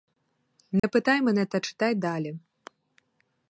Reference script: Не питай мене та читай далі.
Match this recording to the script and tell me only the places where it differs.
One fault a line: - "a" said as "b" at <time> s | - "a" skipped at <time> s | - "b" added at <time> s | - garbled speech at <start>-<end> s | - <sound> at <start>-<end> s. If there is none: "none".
- dropout at 0.8-0.8 s